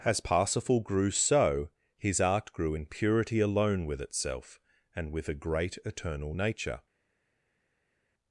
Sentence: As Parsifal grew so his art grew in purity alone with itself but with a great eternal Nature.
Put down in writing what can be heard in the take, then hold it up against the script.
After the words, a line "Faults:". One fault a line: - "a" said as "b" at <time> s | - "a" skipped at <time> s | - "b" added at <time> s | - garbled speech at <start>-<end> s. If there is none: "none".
As Parsifal grew so his art grew in purity alone with itself and with a great eternal Nature.
Faults:
- "but" said as "and" at 4.9 s